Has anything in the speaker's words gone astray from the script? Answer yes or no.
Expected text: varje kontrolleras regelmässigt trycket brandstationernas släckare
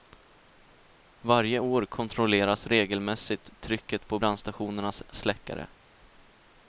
yes